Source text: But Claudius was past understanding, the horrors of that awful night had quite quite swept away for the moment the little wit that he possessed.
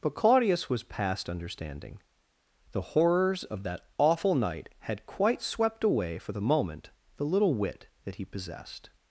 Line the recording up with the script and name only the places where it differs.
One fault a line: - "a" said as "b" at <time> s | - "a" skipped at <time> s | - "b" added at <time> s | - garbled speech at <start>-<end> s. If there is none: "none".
- "quite" skipped at 5.4 s